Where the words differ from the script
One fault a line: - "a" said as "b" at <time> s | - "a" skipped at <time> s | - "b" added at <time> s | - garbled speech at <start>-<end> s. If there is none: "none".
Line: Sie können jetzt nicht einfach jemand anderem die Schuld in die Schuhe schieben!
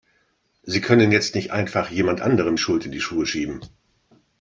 - "die" skipped at 2.5 s